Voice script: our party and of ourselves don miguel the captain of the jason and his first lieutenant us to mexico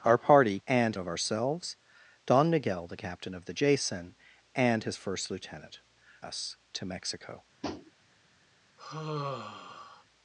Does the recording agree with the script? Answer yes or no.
yes